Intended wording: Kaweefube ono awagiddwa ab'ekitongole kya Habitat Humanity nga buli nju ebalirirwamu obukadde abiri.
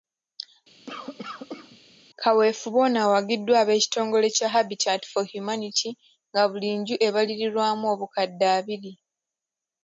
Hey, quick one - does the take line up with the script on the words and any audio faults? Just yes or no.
no